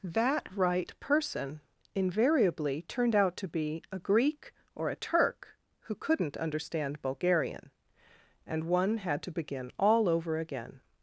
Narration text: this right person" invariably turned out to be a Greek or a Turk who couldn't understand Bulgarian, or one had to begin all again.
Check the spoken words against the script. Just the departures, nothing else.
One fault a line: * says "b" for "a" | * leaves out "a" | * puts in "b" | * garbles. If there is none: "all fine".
* says "that" for "this"
* says "and" for "or"
* puts in "over"